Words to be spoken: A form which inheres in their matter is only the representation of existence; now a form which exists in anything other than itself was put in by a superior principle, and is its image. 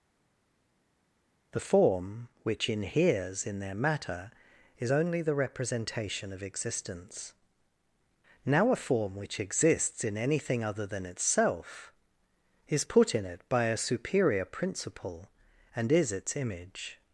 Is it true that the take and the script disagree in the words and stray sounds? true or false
true